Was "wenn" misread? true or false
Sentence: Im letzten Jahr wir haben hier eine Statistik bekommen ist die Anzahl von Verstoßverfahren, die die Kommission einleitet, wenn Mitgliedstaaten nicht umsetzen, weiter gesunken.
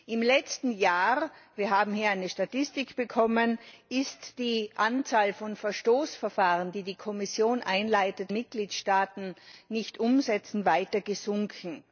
true